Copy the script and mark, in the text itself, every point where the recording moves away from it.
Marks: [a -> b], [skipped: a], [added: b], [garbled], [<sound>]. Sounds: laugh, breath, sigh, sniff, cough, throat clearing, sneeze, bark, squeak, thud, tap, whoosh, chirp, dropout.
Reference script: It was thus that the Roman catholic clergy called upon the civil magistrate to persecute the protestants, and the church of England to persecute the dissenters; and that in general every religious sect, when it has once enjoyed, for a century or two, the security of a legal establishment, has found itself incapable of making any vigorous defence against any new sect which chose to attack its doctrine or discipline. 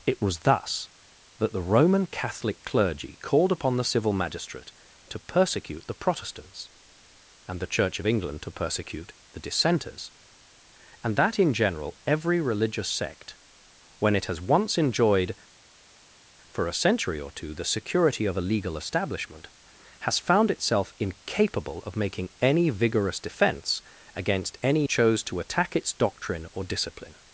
It was thus that the Roman catholic clergy called upon the civil magistrate to persecute the protestants, and the church of England to persecute the dissenters; and that in general every religious sect, when it has once enjoyed, for a century or two, the security of a legal establishment, has found itself incapable of making any vigorous defence against any [skipped: new sect which] chose to attack its doctrine or discipline.